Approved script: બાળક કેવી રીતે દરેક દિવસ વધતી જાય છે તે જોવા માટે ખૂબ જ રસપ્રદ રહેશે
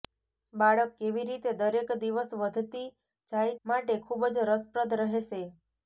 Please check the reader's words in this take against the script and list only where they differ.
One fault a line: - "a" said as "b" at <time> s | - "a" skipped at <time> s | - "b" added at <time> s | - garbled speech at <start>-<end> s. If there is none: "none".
- "છે તે જોવા" skipped at 3.5 s